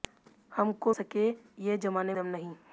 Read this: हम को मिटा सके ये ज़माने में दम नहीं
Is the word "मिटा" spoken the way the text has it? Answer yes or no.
no